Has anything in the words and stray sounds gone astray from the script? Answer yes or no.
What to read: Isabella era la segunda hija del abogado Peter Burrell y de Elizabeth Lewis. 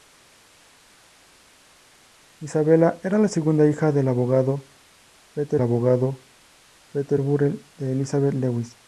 yes